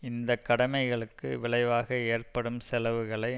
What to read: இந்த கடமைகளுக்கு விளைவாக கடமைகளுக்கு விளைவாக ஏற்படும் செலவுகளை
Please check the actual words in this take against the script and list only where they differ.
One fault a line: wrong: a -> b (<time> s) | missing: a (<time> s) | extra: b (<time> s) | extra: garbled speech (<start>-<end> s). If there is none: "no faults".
missing: கடமைகளுக்கு விளைவாக (2.0 s)